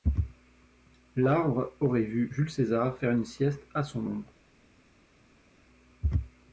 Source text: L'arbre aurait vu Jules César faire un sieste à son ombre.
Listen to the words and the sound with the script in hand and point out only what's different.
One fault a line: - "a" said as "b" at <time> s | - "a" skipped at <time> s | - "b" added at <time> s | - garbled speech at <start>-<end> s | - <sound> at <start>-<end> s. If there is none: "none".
- "un" said as "une" at 3.1 s